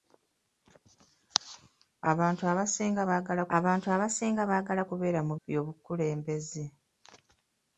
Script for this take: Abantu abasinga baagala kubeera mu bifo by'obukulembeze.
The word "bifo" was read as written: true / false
false